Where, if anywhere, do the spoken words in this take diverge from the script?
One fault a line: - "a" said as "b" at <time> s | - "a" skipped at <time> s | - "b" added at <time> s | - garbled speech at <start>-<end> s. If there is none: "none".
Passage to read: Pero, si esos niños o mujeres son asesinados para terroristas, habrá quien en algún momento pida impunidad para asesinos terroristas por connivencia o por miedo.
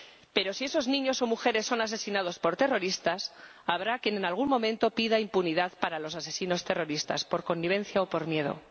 - "para" said as "por" at 2.4 s
- "los" added at 6.0 s